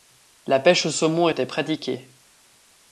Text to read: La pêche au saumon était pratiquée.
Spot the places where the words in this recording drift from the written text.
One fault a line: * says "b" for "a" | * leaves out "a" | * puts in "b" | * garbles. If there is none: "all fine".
all fine